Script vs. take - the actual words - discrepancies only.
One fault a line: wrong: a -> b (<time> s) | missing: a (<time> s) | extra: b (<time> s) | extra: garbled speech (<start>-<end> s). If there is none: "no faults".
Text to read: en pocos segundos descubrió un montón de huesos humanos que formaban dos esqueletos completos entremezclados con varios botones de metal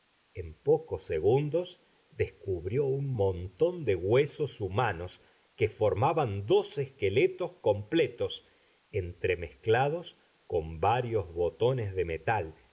no faults